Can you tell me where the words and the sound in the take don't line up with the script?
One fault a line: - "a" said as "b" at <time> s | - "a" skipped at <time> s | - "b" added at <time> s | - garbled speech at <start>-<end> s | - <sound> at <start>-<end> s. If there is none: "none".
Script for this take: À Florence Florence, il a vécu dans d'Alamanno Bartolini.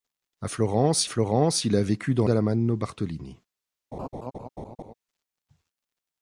- laugh at 3.9-4.9 s